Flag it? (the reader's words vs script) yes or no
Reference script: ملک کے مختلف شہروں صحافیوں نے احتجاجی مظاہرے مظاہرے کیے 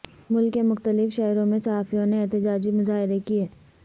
yes